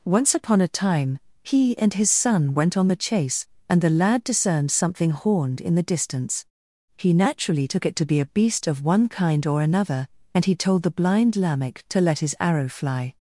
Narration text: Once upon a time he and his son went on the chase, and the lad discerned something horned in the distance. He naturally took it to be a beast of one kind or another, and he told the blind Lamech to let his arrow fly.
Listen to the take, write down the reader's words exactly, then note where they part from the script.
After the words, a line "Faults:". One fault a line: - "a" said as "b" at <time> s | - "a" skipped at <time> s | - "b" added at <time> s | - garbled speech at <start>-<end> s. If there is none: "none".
Once upon a time he and his son went on the chase, and the lad discerned something horned in the distance. He naturally took it to be a beast of one kind or another, and he told the blind Lamech to let his arrow fly.
Faults:
none